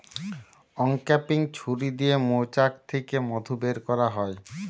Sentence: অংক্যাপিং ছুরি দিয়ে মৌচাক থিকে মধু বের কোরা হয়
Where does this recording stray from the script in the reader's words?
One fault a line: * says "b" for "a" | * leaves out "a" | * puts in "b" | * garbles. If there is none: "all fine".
all fine